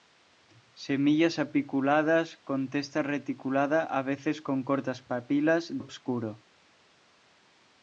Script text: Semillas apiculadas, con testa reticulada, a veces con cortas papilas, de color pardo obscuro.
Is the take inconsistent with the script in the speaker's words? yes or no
yes